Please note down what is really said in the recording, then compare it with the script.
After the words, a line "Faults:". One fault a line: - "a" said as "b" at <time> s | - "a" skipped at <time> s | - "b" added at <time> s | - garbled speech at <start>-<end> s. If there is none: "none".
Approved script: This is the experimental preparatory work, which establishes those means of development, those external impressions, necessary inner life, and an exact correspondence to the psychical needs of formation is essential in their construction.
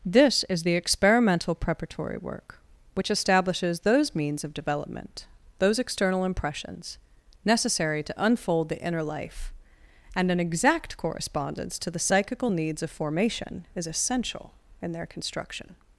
This is the experimental preparatory work, which establishes those means of development, those external impressions, necessary to unfold the inner life, and an exact correspondence to the psychical needs of formation is essential in their construction.
Faults:
- "to unfold the" added at 8.0 s